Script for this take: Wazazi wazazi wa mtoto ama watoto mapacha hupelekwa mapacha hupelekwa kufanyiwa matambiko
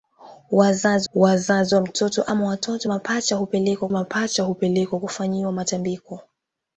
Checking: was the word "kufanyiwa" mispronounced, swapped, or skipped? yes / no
no